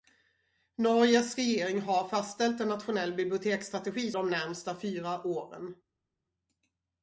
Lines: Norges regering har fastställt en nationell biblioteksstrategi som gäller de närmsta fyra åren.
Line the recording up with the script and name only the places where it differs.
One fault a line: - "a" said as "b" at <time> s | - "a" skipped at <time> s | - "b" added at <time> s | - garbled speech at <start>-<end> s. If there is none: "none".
- "som gäller" skipped at 4.1 s